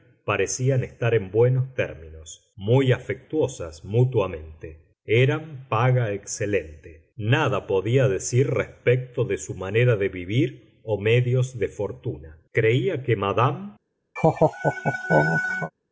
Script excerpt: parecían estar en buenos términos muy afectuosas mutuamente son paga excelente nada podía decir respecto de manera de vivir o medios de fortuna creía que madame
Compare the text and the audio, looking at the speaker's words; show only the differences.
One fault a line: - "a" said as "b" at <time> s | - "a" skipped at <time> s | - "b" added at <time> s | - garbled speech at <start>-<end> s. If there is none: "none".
- "son" said as "eran" at 5.0 s
- "su" added at 9.4 s